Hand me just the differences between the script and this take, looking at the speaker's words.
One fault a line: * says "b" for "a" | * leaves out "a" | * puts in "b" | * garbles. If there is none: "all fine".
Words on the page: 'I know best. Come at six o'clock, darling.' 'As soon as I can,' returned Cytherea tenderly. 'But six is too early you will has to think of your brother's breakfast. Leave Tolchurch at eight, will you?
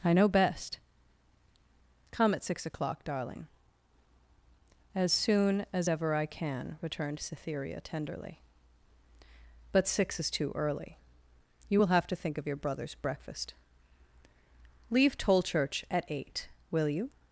* puts in "ever"
* says "have" for "has"